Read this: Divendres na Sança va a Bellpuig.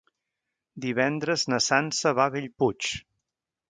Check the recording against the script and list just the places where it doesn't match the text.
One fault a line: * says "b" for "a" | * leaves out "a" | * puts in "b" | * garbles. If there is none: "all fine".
all fine